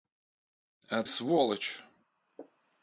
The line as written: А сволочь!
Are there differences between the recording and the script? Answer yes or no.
no